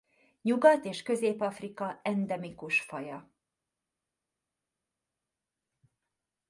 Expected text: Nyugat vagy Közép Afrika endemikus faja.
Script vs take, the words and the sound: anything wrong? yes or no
yes